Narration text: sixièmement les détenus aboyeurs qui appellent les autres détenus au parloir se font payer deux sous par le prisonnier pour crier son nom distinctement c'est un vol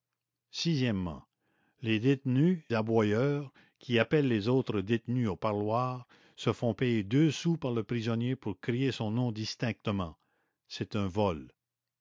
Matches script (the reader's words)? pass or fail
pass